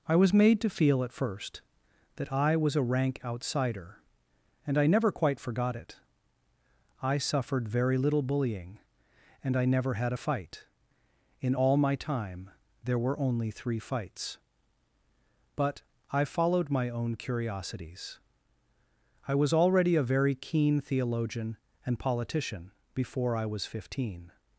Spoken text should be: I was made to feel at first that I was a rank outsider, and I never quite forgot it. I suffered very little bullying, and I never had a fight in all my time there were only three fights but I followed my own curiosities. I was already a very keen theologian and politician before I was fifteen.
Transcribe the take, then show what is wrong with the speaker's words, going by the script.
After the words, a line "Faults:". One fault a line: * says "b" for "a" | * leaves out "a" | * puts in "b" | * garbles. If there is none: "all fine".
I was made to feel at first that I was a rank outsider, and I never quite forgot it. I suffered very little bullying, and I never had a fight in all my time there were only three fights but I followed my own curiosities. I was already a very keen theologian and politician before I was fifteen.
Faults:
all fine